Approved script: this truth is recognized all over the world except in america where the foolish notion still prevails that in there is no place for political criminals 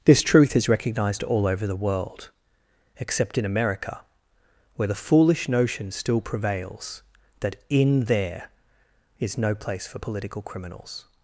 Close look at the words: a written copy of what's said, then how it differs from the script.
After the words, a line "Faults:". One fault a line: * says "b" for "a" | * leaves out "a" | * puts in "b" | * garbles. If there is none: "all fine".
this truth is recognized all over the world except in america where the foolish notion still prevails that in there is no place for political criminals
Faults:
all fine